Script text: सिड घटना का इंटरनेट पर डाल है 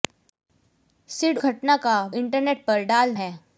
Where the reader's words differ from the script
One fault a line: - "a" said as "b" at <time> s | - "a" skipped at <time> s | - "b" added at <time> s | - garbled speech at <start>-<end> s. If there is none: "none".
none